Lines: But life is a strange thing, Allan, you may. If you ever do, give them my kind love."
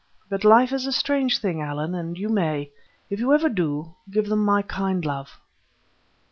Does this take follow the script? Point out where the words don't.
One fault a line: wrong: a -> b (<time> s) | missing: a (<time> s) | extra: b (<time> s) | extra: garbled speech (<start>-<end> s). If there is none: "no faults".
extra: and (1.9 s)